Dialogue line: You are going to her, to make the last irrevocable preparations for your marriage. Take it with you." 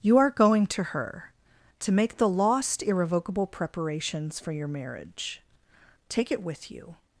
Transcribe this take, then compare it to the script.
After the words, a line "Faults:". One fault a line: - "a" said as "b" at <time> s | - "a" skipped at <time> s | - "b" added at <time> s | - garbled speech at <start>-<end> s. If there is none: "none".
You are going to her, to make the lost irrevocable preparations for your marriage. Take it with you."
Faults:
- "last" said as "lost" at 2.3 s